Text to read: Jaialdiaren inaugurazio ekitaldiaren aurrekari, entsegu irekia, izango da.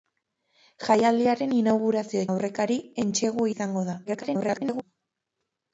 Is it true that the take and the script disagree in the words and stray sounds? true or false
true